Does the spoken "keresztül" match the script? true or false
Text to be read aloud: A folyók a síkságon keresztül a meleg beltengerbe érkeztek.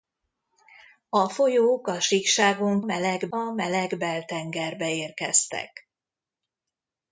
false